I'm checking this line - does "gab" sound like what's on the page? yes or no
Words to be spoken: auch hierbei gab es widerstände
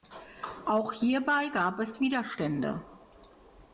yes